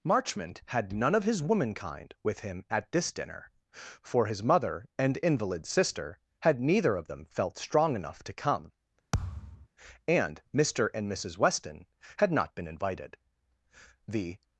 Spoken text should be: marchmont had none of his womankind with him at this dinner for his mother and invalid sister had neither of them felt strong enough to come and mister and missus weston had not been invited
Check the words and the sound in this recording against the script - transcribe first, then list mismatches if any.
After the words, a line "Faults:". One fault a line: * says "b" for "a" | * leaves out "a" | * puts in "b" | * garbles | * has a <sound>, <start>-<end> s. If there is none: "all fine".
marchmont had none of his womankind with him at this dinner for his mother and invalid sister had neither of them felt strong enough to come and mister and missus weston had not been invited the
Faults:
* has a thud, 9.1-9.7 s
* puts in "the"